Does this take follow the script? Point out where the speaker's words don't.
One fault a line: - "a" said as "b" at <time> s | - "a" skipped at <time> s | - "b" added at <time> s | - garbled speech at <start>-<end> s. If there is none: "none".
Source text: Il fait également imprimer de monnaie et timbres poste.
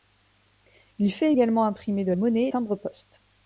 none